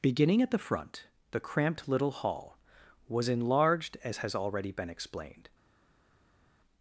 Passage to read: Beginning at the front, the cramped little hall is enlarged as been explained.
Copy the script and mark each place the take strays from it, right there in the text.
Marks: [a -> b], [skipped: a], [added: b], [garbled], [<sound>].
Beginning at the front, the cramped little hall [is -> was] enlarged as [added: has already] been explained.